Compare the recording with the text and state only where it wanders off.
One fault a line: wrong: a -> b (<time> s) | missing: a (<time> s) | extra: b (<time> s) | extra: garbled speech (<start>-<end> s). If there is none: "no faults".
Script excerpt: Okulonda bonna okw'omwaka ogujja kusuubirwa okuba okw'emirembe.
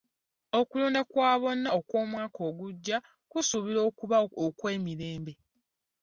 extra: kwa (1.1 s)